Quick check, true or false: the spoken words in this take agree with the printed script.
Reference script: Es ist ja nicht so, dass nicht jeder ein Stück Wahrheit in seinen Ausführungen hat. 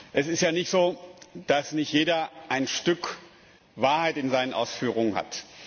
true